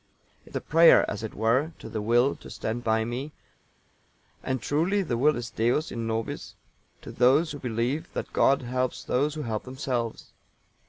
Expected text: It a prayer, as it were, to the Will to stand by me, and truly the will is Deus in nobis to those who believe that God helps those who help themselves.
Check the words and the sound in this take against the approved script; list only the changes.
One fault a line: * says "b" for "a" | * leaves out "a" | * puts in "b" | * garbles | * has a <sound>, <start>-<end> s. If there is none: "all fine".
all fine